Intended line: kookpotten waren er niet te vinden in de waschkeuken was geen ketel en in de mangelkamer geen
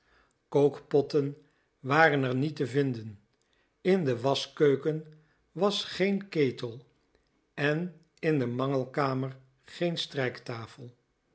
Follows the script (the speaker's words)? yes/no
yes